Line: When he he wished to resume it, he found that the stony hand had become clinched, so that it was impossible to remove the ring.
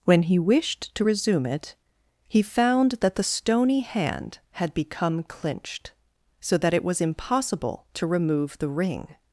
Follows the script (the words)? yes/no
no